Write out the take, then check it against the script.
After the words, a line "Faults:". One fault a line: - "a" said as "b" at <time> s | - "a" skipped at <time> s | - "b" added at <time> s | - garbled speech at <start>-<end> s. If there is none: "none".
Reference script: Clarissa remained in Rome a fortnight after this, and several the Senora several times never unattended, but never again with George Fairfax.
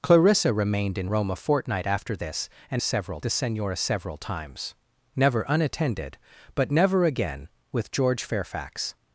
Clarissa remained in Rome a fortnight after this, and several the Senora several times never unattended, but never again with George Fairfax.
Faults:
none